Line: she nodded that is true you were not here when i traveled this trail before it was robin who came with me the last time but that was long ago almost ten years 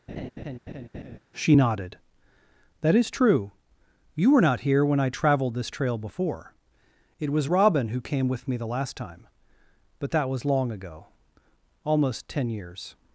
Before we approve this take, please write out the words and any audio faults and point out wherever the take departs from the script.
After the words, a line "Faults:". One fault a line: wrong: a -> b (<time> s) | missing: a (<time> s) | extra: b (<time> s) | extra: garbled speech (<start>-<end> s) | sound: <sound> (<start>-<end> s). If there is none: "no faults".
she nodded that is true you were not here when i traveled this trail before it was robin who came with me the last time but that was long ago almost ten years
Faults:
sound: laugh (0.1-1.2 s)